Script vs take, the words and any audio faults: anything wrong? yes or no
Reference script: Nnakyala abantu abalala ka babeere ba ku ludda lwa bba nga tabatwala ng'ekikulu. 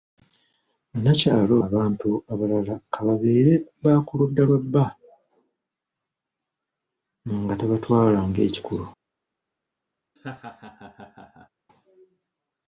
yes